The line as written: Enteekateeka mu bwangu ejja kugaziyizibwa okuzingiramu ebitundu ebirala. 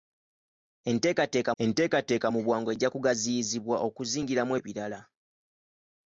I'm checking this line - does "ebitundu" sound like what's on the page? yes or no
no